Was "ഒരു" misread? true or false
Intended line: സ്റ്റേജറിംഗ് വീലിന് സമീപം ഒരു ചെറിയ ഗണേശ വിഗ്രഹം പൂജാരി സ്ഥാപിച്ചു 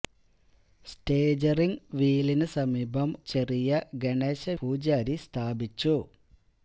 true